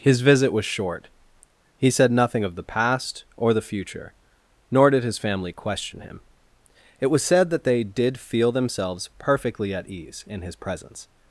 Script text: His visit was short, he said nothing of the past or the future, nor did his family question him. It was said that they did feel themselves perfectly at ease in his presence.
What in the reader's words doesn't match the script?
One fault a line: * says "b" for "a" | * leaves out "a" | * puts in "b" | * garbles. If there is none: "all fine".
all fine